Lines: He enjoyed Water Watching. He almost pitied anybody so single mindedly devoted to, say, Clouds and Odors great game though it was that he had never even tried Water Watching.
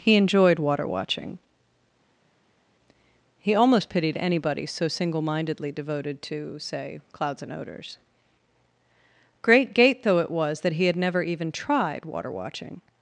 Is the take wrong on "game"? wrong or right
wrong